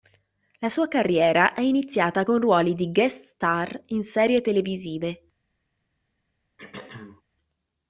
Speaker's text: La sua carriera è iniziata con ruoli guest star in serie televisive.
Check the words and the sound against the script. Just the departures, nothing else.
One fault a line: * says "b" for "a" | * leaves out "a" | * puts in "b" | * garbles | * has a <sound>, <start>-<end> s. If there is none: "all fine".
* puts in "di"
* has a throat clearing, 6.6-7.2 s